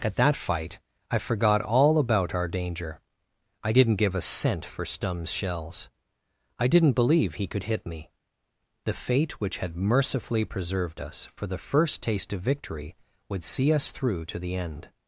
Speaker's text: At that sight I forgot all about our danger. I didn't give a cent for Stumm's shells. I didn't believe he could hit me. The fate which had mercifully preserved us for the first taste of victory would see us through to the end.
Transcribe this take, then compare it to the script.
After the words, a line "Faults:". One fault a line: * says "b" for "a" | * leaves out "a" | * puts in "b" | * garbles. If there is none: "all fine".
At that fight I forgot all about our danger. I didn't give a cent for Stumm's shells. I didn't believe he could hit me. The fate which had mercifully preserved us for the first taste of victory would see us through to the end.
Faults:
* says "fight" for "sight"